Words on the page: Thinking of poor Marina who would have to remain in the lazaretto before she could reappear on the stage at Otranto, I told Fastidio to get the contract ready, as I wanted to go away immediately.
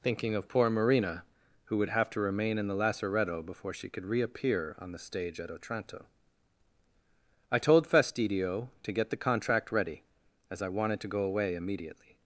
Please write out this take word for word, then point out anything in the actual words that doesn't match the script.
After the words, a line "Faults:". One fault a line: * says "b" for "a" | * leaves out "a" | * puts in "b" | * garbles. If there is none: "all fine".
Thinking of poor Marina who would have to remain in the lazaretto before she could reappear on the stage at Otranto, I told Fastidio to get the contract ready, as I wanted to go away immediately.
Faults:
all fine